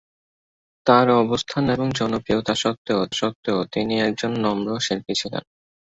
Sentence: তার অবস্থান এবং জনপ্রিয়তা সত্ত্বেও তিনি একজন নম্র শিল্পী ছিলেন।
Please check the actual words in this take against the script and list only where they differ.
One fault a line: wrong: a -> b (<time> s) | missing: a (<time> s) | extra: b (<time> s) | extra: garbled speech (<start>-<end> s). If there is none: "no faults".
extra: সত্ত্বেও (3.1 s)